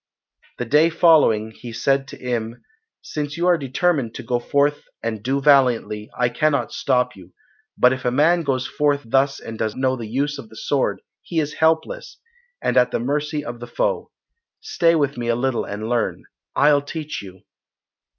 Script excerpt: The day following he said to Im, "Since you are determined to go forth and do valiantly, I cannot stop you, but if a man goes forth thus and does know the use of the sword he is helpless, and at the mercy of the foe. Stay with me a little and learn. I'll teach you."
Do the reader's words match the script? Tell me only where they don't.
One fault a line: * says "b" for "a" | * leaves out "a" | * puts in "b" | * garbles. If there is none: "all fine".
all fine